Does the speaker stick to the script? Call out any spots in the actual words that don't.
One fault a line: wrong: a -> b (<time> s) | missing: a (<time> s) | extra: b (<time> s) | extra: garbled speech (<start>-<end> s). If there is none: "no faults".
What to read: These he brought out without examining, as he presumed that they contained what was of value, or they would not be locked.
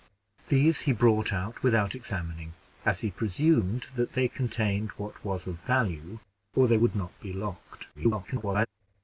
extra: garbled speech (7.9-8.7 s)